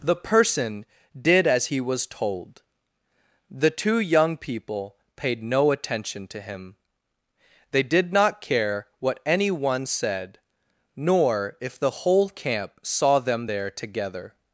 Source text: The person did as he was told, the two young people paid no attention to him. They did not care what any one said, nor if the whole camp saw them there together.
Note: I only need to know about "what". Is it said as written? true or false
true